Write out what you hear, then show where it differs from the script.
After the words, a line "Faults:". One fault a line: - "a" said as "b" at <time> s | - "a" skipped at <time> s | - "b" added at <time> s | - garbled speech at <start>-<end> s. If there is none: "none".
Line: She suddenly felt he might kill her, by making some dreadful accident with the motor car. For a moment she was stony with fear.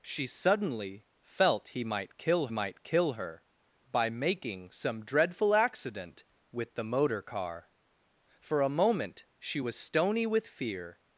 She suddenly felt he might kill might kill her, by making some dreadful accident with the motor car. For a moment she was stony with fear.
Faults:
- "might kill" added at 2.5 s